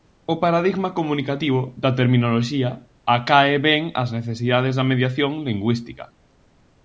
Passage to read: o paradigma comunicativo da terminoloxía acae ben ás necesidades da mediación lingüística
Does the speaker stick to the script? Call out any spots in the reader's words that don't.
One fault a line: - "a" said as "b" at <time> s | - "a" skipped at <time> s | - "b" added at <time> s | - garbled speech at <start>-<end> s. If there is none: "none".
none